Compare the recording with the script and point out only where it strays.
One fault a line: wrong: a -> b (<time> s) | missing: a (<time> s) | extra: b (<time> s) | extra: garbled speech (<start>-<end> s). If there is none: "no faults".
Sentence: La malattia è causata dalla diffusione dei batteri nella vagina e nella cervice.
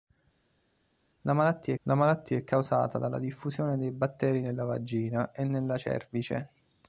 extra: la malattia (1.8 s)